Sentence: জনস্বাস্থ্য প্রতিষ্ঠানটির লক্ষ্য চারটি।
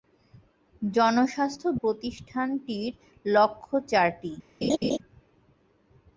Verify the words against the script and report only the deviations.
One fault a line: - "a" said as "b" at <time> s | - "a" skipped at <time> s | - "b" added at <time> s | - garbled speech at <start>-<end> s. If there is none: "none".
none